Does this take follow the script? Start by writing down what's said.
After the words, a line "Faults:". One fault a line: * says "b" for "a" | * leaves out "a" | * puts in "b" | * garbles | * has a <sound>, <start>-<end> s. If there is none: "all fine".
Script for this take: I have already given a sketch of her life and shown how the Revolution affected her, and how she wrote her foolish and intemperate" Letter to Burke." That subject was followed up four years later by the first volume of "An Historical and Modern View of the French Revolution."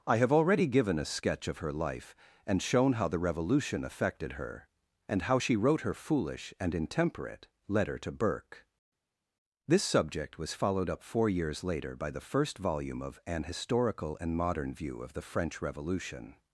I have already given a sketch of her life and shown how the Revolution affected her, and how she wrote her foolish and intemperate" Letter to Burke." This subject was followed up four years later by the first volume of "An Historical and Modern View of the French Revolution."
Faults:
* says "This" for "That"